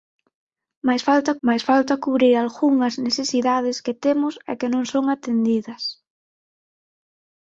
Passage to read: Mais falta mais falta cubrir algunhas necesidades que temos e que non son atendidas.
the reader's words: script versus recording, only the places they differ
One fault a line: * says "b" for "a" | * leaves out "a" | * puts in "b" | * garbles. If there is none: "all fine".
all fine